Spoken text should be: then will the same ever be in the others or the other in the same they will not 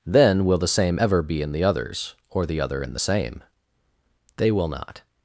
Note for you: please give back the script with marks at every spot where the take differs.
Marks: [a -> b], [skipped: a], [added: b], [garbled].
then will the same ever be in the others or the other in the same they will not